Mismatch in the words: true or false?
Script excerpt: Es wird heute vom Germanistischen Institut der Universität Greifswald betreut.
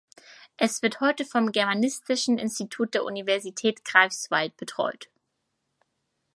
false